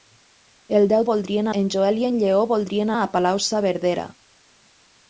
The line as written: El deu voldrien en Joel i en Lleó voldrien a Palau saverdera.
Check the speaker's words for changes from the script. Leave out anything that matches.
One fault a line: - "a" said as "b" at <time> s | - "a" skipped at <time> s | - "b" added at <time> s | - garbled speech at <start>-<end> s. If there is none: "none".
none